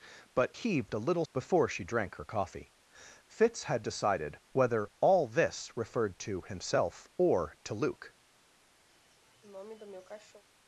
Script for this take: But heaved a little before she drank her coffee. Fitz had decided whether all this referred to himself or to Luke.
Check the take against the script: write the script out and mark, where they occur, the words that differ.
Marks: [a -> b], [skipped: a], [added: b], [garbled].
But heaved a little before she drank her coffee. Fitz had decided whether all this referred to himself or to Luke.